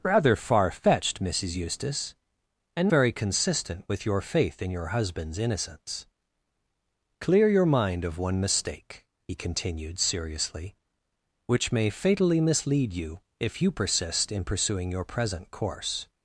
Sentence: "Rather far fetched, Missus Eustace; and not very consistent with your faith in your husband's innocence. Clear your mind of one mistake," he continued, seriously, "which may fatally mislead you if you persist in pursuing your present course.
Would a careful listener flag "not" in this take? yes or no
yes